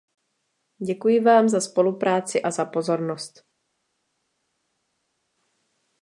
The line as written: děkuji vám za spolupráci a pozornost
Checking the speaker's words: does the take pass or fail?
fail